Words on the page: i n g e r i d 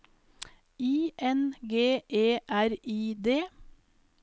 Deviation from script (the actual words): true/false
false